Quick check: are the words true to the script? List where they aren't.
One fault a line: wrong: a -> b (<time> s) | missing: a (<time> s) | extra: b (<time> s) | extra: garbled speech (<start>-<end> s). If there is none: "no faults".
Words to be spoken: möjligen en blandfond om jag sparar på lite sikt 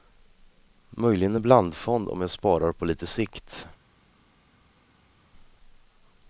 no faults